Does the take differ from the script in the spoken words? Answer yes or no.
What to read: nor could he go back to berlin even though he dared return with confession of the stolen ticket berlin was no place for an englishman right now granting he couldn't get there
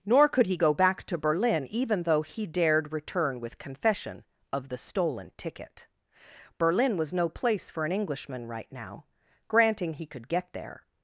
yes